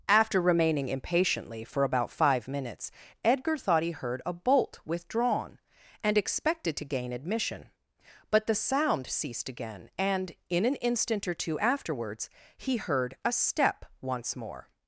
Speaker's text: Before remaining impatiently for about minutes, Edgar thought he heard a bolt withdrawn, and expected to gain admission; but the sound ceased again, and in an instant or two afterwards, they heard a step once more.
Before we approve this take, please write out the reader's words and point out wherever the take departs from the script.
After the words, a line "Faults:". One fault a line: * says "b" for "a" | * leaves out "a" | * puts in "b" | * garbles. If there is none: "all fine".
After remaining impatiently for about five minutes, Edgar thought he heard a bolt withdrawn, and expected to gain admission; but the sound ceased again, and in an instant or two afterwards, he heard a step once more.
Faults:
* says "After" for "Before"
* puts in "five"
* says "he" for "they"